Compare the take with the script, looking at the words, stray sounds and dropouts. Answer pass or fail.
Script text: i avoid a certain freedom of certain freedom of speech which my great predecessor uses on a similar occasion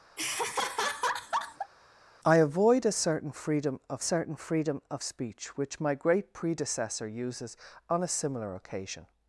fail